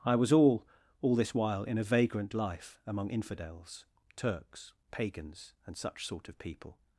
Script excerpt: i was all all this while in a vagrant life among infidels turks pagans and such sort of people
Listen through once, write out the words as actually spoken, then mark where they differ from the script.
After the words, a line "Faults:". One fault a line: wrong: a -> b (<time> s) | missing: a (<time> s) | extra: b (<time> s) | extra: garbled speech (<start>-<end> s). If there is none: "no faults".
i was all all this while in a vagrant life among infidels turks pagans and such sort of people
Faults:
no faults